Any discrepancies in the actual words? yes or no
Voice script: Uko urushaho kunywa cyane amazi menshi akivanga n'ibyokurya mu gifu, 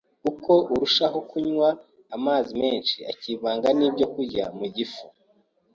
yes